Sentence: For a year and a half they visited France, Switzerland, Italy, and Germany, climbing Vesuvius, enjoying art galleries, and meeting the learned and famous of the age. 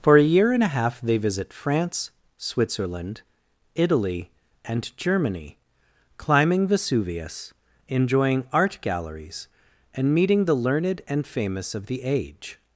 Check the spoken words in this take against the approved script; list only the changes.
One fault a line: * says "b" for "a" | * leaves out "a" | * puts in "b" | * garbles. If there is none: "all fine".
* says "visit" for "visited"